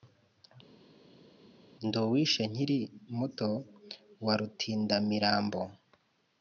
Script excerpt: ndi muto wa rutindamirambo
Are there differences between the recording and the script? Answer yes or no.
yes